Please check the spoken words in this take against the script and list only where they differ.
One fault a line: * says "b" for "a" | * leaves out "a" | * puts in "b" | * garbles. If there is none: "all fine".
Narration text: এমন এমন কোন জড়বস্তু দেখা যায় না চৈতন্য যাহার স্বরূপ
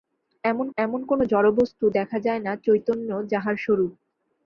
all fine